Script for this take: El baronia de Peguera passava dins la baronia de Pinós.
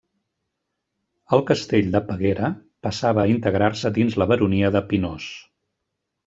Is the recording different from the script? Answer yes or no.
yes